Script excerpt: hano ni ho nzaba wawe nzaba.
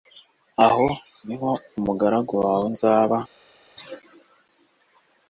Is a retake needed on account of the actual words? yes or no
yes